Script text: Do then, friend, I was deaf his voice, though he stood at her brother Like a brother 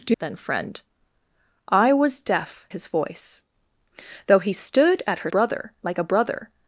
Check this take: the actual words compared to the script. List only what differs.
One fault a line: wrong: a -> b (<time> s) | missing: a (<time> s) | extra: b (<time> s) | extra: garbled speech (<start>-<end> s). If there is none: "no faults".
no faults